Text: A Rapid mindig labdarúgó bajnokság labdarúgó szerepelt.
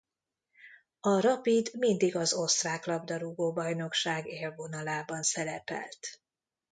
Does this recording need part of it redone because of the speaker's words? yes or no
yes